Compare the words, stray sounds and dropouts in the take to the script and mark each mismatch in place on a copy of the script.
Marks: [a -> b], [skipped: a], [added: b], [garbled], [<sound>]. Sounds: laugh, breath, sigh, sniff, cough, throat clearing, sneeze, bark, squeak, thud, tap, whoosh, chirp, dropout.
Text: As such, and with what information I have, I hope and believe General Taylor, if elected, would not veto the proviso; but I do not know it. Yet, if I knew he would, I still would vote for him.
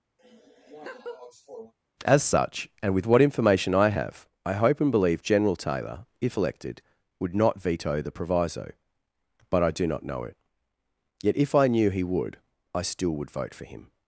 [laugh] As such, and with what information I have, I hope and believe General Taylor, if elected, would not veto the proviso; but I do not know it. Yet, if I knew he would, I still would vote for him.